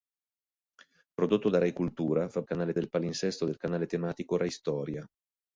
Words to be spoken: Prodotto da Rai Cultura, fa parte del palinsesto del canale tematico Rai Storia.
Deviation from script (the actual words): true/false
true